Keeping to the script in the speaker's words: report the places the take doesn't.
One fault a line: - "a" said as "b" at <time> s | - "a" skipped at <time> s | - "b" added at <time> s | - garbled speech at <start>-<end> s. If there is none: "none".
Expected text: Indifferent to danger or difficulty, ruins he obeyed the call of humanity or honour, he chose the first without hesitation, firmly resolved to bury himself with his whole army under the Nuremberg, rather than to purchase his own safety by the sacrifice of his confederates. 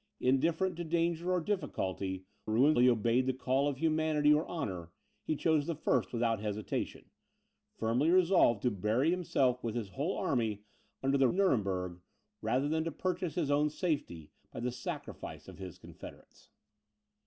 none